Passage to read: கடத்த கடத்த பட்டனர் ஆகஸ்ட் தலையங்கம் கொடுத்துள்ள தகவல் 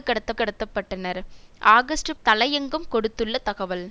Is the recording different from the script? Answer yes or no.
no